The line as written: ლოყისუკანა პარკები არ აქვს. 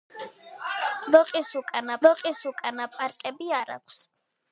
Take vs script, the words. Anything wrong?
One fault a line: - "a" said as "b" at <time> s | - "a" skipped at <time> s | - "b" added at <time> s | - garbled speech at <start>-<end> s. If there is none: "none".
- "ლოყისუკანა" added at 2.1 s